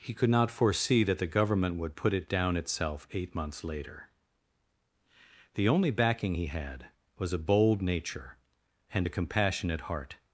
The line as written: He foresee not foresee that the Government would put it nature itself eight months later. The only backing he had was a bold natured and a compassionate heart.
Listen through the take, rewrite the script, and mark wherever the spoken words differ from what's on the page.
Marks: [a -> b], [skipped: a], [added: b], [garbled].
He [foresee -> could] not foresee that the Government would put it [nature -> down] itself eight months later. The only backing he had was a bold [natured -> nature] and a compassionate heart.